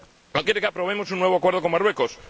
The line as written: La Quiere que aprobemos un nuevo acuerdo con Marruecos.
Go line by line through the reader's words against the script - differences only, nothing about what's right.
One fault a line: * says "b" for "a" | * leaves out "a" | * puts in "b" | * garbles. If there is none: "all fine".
all fine